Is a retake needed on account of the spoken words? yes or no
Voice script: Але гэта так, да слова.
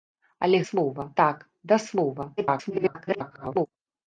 yes